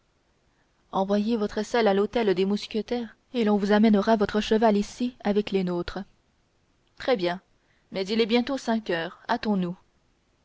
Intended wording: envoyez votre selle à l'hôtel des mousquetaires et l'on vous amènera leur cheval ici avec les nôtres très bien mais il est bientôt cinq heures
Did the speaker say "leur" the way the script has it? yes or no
no